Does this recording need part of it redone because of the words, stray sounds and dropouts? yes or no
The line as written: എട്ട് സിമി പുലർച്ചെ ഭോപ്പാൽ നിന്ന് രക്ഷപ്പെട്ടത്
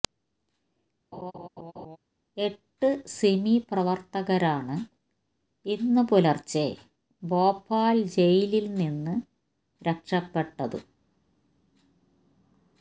yes